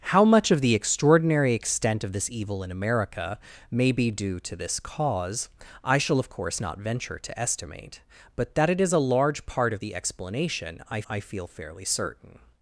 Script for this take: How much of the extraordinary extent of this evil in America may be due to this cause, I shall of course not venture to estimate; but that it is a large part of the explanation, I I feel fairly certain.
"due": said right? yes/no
yes